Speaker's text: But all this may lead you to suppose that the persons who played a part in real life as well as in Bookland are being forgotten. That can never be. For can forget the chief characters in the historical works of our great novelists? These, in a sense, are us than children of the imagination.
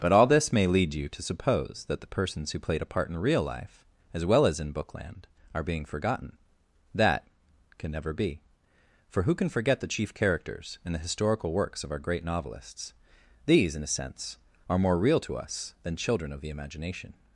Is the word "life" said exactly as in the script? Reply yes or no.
yes